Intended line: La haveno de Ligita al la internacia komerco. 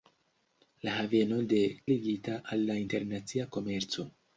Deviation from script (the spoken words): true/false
false